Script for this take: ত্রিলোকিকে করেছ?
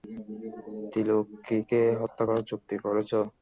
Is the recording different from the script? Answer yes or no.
yes